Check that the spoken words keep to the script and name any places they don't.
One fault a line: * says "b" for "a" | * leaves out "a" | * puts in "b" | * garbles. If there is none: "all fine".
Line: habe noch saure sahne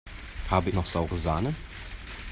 all fine